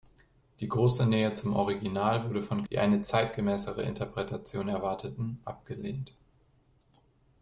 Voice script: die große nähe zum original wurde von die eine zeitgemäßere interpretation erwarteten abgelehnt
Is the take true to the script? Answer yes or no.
yes